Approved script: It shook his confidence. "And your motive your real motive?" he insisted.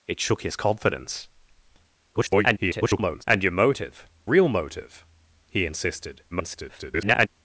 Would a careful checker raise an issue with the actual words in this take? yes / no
yes